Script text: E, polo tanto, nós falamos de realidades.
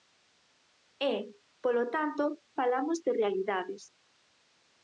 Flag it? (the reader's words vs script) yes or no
yes